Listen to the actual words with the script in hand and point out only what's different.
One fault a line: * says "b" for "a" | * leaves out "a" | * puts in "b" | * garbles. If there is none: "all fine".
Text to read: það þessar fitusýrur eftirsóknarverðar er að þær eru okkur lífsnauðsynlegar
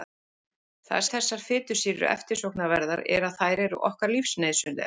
all fine